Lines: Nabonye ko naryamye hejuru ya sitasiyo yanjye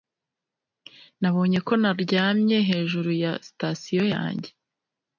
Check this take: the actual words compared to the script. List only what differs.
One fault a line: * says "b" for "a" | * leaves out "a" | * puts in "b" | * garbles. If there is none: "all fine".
all fine